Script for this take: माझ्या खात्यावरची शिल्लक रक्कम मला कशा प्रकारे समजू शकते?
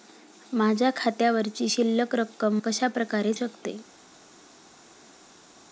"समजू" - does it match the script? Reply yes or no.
no